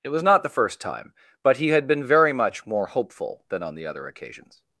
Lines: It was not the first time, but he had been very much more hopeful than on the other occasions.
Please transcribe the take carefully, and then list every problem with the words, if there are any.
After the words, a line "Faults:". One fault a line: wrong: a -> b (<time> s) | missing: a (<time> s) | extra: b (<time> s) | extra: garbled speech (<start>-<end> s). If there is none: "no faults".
It was not the first time, but he had been very much more hopeful than on the other occasions.
Faults:
no faults